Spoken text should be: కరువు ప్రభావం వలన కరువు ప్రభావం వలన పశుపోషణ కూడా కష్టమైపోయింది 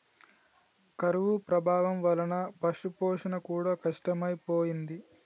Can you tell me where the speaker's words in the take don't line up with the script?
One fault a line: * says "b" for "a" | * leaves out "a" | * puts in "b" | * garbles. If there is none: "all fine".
* leaves out "కరువు ప్రభావం వలన"